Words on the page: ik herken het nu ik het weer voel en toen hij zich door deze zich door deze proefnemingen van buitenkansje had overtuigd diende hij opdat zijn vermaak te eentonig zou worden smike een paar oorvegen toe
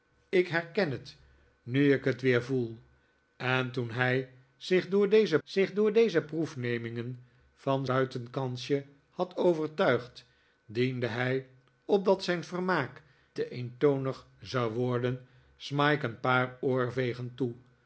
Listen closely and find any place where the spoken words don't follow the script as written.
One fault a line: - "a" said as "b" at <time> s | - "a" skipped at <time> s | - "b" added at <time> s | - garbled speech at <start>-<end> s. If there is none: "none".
none